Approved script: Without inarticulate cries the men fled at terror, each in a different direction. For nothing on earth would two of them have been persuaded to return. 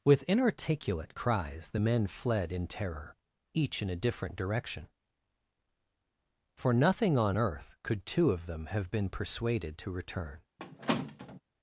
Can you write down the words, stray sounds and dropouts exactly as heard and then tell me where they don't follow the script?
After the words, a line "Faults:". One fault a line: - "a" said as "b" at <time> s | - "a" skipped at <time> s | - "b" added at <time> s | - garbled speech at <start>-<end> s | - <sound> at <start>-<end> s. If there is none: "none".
With inarticulate cries the men fled in terror, each in a different direction. For nothing on earth could two of them have been persuaded to return.
Faults:
- "Without" said as "With" at 0.0 s
- "at" said as "in" at 2.5 s
- "would" said as "could" at 7.8 s
- squeak at 10.6-11.4 s